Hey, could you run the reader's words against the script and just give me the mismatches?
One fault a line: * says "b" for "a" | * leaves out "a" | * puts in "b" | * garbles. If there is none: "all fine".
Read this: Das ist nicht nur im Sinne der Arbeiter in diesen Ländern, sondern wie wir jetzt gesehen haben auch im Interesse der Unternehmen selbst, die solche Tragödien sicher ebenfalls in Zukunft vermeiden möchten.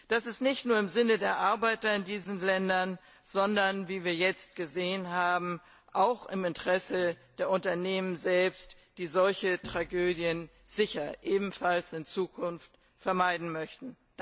all fine